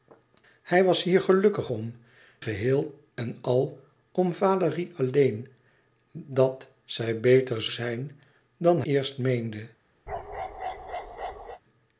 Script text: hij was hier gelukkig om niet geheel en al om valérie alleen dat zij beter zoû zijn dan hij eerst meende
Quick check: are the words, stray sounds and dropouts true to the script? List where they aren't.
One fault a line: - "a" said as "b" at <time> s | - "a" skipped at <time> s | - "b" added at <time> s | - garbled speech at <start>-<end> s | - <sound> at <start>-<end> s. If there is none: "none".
- "niet" skipped at 1.9 s
- "zoû" skipped at 7.7 s
- "hij" skipped at 8.8 s
- bark at 10.1-11.6 s